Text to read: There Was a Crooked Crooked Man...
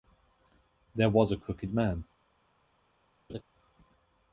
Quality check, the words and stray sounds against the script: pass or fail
fail